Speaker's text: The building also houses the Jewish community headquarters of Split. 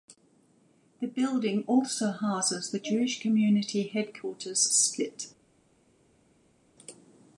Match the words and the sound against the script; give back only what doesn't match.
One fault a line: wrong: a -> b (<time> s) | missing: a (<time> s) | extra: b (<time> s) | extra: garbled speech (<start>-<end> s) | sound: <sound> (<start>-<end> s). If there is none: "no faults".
missing: of (4.7 s)